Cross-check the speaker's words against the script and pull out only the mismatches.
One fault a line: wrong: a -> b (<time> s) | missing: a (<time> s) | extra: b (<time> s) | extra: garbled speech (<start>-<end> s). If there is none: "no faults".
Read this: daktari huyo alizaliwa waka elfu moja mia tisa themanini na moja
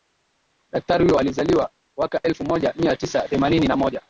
no faults